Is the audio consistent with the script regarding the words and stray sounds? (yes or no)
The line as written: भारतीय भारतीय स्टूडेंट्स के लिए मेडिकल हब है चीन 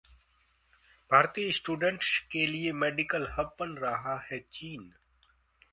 no